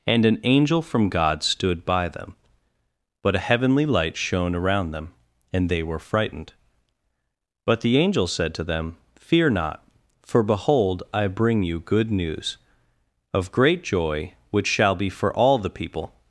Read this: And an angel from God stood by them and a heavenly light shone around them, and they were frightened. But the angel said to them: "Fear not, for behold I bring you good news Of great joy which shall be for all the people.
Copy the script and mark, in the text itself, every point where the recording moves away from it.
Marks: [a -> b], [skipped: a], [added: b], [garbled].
And an angel from God stood by them [and -> but] a heavenly light shone around them, and they were frightened. But the angel said to them: "Fear not, for behold I bring you good news Of great joy which shall be for all the people.